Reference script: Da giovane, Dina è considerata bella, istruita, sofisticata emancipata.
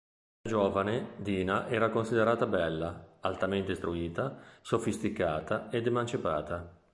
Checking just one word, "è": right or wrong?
wrong